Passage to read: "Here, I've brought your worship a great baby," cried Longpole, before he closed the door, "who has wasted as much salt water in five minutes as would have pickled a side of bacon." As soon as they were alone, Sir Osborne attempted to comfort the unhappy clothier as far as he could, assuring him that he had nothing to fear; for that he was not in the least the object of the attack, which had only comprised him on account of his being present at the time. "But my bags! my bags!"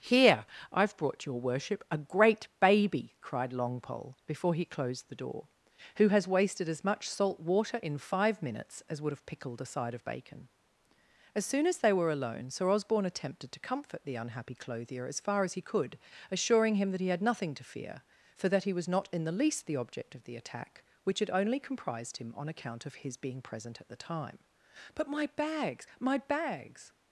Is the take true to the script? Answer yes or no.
yes